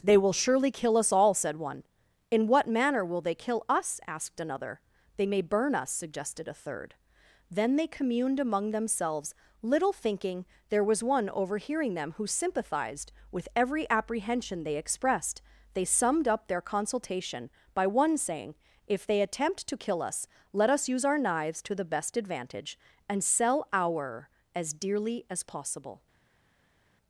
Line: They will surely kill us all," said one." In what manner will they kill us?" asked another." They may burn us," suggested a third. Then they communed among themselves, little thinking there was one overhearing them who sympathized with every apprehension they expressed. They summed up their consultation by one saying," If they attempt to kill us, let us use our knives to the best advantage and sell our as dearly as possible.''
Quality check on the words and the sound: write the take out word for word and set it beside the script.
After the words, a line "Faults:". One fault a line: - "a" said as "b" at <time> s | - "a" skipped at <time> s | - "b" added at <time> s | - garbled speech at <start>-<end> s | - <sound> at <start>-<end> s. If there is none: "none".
They will surely kill us all," said one." In what manner will they kill us?" asked another." They may burn us," suggested a third. Then they communed among themselves, little thinking there was one overhearing them who sympathized with every apprehension they expressed. They summed up their consultation by one saying," If they attempt to kill us, let us use our knives to the best advantage and sell our as dearly as possible.''
Faults:
none